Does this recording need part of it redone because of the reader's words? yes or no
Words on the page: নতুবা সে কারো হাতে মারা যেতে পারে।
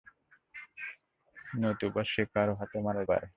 yes